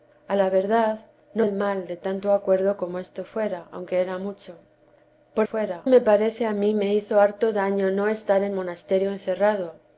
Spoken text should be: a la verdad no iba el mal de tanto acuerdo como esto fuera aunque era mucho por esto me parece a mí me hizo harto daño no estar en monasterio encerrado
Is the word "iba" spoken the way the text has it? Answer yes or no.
no